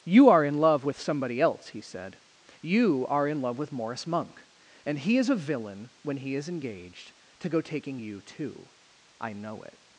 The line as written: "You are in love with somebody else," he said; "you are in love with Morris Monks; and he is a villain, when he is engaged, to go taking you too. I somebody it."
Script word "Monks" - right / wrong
wrong